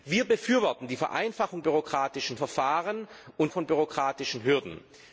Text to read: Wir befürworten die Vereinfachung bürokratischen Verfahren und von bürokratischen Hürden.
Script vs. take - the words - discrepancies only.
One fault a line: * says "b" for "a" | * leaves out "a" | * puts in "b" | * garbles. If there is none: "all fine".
all fine